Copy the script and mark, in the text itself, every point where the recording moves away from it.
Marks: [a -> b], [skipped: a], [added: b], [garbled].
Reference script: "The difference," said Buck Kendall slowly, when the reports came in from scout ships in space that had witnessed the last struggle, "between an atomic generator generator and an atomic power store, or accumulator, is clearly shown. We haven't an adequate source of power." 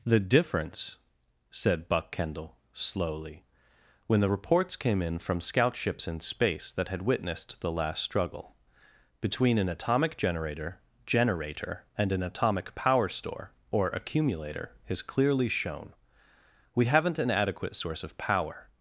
"The difference," said Buck Kendall slowly, when the reports came in from scout ships in space that had witnessed the last struggle, "between an atomic generator generator and an atomic power store, or accumulator, is clearly shown. We haven't an adequate source of power."